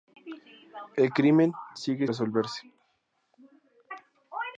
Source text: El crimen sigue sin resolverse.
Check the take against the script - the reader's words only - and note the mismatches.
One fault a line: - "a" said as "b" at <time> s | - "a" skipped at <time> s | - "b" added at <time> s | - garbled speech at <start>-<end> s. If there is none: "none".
- "sin" skipped at 2.1 s